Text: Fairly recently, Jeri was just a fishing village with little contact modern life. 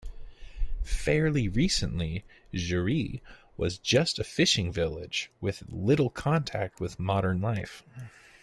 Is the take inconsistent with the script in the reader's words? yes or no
yes